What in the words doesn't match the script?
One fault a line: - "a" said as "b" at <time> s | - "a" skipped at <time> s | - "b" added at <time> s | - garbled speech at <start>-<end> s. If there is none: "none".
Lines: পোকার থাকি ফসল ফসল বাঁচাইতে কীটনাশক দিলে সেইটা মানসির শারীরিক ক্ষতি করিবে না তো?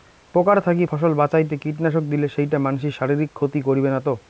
- "ফসল" skipped at 1.1 s